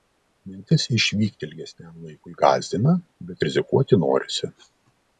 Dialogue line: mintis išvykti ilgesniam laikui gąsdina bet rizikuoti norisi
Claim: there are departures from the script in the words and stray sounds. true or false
false